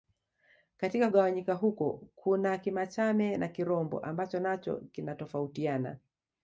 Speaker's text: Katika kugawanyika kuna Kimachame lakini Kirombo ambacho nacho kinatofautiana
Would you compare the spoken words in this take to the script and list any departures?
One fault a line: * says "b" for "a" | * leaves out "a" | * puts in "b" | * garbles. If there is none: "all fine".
* puts in "huko"
* says "na" for "lakini"